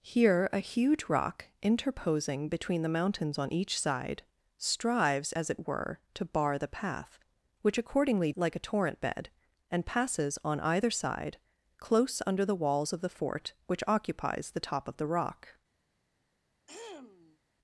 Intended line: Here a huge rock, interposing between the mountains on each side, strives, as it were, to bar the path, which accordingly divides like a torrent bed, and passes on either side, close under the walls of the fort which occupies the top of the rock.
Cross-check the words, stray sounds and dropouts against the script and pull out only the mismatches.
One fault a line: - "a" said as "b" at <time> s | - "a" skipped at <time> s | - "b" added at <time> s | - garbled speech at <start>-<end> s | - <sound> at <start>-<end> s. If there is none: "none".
- "divides" skipped at 8.3 s
- throat clearing at 16.7-17.4 s